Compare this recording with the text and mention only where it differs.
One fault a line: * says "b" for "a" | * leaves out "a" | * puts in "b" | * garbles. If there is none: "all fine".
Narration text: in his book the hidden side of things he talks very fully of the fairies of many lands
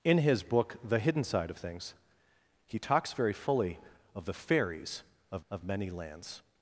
* puts in "of"